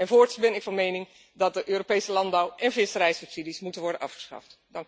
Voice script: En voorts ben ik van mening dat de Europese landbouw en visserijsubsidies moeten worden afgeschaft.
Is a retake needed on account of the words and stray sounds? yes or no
no